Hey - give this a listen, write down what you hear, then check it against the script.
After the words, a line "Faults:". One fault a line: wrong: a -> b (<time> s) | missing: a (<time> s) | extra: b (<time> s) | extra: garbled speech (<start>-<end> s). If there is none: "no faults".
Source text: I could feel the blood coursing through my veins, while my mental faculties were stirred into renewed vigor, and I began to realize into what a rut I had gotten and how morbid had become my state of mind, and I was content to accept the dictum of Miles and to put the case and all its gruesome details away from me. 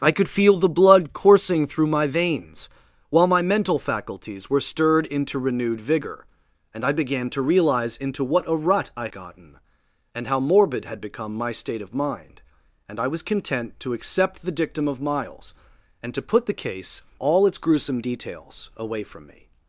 I could feel the blood coursing through my veins, while my mental faculties were stirred into renewed vigor, and I began to realize into what a rut I gotten and how morbid had become my state of mind, and I was content to accept the dictum of Miles and to put the case all its gruesome details away from me.
Faults:
missing: had (9.1 s)
missing: and (17.0 s)